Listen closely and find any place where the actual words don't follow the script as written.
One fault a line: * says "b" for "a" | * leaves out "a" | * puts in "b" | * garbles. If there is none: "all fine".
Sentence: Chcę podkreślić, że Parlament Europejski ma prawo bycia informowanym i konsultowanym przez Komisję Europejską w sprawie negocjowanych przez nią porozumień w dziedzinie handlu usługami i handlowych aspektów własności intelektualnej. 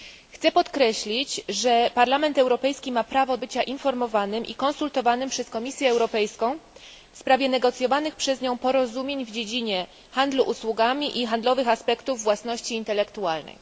all fine